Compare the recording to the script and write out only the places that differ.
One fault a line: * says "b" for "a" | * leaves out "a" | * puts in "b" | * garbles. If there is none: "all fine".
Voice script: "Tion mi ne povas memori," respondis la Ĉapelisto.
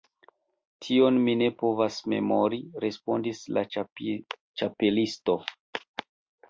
all fine